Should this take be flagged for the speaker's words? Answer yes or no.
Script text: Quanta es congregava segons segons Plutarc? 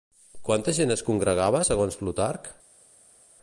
yes